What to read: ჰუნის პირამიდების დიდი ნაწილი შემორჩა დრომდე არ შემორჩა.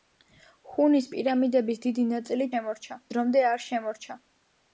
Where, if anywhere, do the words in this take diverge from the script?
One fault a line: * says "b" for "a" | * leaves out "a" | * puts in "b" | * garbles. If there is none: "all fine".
all fine